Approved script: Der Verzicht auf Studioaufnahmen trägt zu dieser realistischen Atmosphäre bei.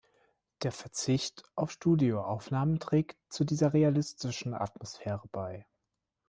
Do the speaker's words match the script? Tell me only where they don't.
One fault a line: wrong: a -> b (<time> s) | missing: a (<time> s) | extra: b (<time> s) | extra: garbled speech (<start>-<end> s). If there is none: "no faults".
no faults